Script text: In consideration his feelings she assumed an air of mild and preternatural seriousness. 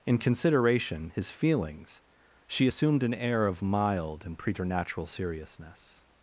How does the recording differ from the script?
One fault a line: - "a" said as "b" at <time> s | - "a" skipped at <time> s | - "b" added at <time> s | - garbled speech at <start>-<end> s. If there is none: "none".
none